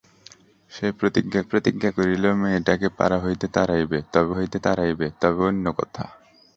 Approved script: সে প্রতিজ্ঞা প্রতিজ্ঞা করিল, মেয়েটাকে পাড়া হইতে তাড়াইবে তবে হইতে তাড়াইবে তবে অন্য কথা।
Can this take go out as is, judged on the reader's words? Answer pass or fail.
pass